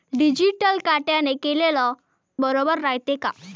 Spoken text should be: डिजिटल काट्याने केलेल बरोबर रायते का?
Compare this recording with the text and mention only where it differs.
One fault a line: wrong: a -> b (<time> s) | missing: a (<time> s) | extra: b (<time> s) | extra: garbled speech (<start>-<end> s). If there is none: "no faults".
no faults